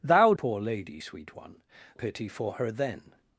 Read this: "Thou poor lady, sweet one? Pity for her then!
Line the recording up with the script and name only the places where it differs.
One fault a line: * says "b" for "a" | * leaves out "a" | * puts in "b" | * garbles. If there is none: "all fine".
all fine